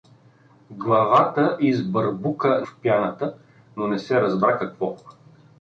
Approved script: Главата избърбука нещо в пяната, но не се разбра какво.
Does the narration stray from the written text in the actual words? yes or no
yes